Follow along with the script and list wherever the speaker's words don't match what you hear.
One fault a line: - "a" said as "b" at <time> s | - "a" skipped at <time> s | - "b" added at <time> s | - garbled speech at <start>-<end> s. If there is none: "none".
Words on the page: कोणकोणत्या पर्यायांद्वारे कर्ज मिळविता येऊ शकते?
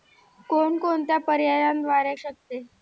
- "कर्ज मिळविता येऊ" skipped at 2.1 s